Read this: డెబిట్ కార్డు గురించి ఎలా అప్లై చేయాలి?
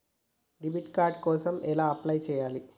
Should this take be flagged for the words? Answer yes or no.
yes